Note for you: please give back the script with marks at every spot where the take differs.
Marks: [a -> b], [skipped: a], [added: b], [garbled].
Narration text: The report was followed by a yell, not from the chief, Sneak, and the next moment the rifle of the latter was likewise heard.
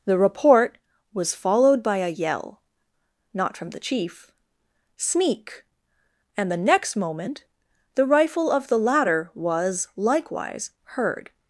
The report was followed by a yell, not from the chief, Sneak, and the next moment the rifle of the latter was likewise heard.